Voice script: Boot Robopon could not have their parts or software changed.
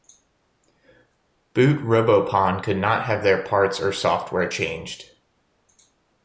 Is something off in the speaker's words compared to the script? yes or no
no